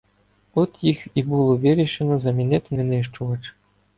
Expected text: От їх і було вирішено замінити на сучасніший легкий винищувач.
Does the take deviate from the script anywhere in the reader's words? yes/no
yes